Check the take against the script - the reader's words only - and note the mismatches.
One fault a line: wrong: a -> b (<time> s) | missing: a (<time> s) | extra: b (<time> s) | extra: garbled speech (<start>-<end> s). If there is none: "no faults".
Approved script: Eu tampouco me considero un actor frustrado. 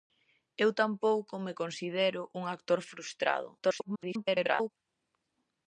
extra: garbled speech (3.6-4.7 s)